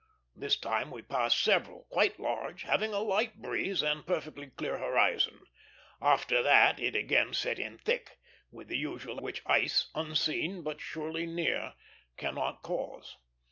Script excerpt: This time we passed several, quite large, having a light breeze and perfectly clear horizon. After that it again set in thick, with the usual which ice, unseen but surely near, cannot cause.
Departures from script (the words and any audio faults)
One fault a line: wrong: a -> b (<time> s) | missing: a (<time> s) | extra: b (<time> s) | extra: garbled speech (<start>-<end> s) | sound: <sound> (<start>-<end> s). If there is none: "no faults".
no faults